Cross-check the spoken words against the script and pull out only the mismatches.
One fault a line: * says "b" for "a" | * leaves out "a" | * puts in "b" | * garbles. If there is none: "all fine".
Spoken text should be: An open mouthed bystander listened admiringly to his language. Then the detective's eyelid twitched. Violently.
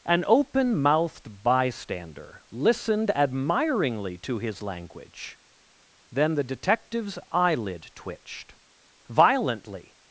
all fine